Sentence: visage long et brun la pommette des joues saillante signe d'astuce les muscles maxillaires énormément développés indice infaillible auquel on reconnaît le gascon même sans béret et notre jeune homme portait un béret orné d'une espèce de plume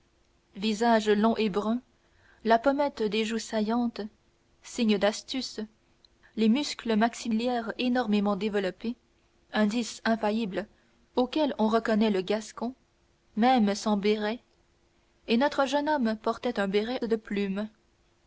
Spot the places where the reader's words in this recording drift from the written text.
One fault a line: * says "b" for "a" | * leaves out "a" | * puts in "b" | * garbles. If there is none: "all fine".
* leaves out "orné d'une espèce"